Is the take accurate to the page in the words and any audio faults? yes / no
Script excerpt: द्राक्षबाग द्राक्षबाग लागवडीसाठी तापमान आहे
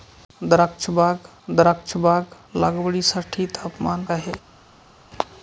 yes